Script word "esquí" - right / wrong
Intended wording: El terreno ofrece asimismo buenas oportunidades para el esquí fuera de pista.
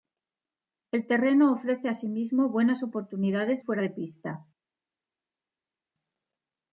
wrong